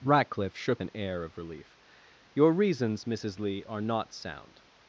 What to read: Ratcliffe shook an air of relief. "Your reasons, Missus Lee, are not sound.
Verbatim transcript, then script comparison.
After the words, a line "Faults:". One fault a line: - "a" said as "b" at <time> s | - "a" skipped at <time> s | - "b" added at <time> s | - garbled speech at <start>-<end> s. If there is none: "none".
Ratcliffe shook an air of relief. "Your reasons, Missus Lee, are not sound.
Faults:
none